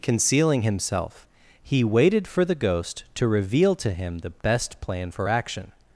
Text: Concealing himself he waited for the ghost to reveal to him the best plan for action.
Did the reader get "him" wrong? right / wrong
right